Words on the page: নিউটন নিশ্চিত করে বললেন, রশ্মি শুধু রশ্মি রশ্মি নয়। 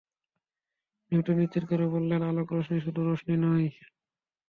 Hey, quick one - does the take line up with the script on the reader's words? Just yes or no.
no